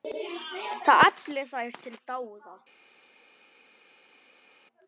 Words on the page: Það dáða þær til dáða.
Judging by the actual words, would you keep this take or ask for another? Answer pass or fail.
fail